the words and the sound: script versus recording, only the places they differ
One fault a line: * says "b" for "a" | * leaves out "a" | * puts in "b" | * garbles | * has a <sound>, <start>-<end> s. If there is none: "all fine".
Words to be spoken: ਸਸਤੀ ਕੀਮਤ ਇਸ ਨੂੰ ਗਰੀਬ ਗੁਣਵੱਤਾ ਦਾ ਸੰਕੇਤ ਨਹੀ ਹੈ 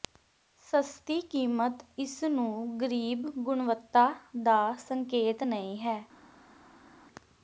all fine